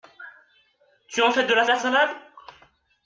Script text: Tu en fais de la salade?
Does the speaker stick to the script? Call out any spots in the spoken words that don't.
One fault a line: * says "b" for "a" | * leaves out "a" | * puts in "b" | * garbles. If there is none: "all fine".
* puts in "la"